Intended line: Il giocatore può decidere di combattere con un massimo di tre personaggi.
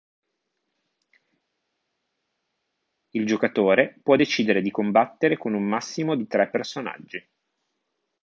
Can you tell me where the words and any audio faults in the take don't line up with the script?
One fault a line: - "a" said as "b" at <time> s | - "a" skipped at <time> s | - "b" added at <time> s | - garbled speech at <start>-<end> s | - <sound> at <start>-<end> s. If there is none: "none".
none